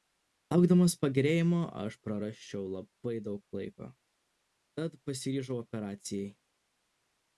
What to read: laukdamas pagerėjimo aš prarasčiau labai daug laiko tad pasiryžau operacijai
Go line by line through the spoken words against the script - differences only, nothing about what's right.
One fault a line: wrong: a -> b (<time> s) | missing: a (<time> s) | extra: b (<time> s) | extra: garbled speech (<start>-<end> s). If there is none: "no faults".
no faults